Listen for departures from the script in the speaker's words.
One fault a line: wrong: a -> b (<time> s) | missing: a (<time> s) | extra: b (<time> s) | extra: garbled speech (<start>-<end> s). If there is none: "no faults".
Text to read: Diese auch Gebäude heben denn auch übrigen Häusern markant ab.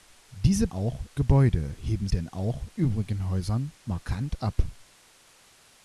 no faults